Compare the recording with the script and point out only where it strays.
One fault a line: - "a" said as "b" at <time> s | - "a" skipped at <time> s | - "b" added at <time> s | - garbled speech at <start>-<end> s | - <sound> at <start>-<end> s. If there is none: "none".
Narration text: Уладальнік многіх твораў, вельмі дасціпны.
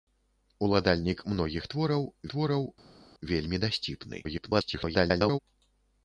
- "твораў" added at 2.3 s
- garbled speech at 4.2-5.4 s